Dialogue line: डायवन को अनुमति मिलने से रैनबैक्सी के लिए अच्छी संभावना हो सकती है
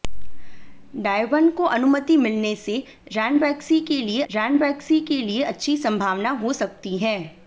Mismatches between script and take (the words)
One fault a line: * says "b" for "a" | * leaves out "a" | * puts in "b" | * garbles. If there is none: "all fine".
* puts in "रैनबैक्सी के लिए"